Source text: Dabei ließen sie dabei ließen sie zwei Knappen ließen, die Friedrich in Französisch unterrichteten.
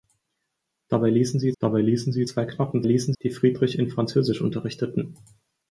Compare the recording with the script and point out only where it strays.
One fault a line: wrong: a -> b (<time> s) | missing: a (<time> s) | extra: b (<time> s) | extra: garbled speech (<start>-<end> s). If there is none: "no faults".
no faults